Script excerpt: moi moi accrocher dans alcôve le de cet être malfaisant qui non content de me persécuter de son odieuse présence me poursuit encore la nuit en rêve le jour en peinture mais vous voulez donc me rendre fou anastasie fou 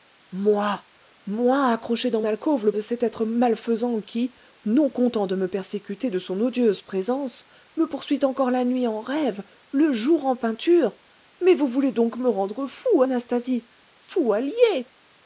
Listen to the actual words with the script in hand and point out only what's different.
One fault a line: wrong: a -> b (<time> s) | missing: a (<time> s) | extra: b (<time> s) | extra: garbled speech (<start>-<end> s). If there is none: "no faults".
no faults